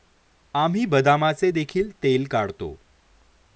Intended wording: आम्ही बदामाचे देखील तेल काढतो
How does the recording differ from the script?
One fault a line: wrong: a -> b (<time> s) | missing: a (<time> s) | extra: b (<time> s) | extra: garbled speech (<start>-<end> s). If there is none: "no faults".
no faults